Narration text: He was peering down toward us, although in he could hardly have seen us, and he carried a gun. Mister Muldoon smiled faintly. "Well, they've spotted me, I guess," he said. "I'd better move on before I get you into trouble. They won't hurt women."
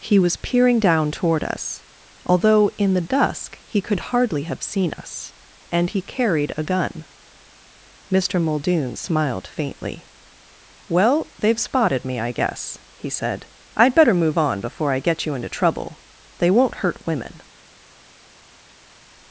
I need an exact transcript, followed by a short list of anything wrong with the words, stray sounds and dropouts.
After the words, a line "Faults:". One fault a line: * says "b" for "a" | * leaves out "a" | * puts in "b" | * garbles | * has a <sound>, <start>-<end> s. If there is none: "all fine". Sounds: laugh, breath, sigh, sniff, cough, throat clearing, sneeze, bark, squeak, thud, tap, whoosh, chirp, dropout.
He was peering down toward us, although in the dusk he could hardly have seen us, and he carried a gun. Mister Muldoon smiled faintly. "Well, they've spotted me, I guess," he said. "I'd better move on before I get you into trouble. They won't hurt women."
Faults:
* puts in "the dusk"